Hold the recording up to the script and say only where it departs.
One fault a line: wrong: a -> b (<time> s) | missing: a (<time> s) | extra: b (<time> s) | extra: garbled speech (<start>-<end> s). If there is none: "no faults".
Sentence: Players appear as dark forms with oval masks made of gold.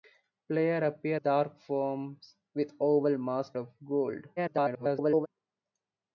missing: as (1.2 s)
missing: made (3.6 s)
extra: garbled speech (4.4-5.3 s)